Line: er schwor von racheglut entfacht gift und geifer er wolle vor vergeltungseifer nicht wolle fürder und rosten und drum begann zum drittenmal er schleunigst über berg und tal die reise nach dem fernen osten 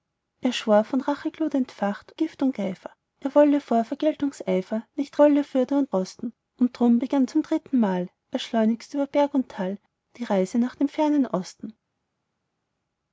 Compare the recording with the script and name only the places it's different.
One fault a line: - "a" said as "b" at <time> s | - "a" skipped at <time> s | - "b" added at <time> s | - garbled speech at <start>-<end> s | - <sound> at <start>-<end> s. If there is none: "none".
none